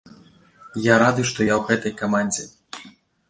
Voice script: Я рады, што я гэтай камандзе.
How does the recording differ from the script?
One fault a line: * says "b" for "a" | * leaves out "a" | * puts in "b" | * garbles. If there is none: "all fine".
* puts in "ў"